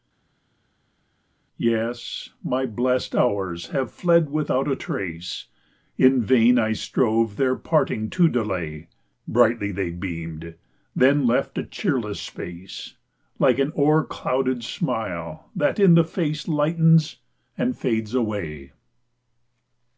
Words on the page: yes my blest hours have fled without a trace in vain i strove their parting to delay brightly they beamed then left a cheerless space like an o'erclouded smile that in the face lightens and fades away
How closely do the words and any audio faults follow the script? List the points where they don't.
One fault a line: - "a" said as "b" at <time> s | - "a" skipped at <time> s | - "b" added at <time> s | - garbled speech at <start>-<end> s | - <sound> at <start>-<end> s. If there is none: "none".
none